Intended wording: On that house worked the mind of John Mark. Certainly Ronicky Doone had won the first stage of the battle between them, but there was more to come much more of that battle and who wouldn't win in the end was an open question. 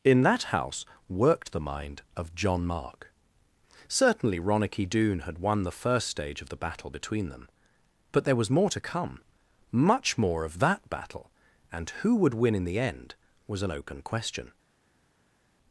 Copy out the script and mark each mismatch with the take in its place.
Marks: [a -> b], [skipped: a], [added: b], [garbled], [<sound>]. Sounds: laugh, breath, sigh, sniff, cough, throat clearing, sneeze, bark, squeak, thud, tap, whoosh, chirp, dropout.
[On -> In] that house worked the mind of John Mark. Certainly Ronicky Doone had won the first stage of the battle between them, but there was more to come much more of that battle and who [wouldn't -> would] win in the end was an open question.